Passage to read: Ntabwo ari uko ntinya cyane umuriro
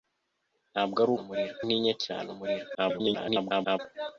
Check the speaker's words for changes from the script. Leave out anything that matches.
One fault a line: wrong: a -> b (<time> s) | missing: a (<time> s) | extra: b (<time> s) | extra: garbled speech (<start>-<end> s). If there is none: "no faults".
wrong: uko -> umuriro (1.2 s)
extra: garbled speech (2.7-3.8 s)